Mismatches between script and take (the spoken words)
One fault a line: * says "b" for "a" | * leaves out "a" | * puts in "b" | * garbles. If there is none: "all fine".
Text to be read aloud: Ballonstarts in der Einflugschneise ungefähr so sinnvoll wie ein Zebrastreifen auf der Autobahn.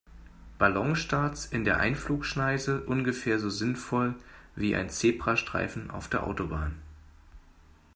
all fine